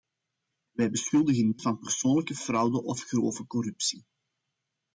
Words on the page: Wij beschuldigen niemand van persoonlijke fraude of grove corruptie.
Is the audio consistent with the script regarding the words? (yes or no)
no